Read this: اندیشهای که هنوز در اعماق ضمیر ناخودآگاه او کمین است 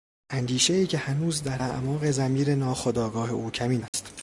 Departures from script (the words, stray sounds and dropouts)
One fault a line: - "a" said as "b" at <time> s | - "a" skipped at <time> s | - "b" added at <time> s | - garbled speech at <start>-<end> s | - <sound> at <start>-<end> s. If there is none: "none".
- dropout at 3.9-3.9 s